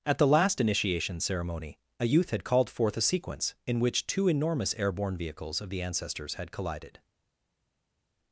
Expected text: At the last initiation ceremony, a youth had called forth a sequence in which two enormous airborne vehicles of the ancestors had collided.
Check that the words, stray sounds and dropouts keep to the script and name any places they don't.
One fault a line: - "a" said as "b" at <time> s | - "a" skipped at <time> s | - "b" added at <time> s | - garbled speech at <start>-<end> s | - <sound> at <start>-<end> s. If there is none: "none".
none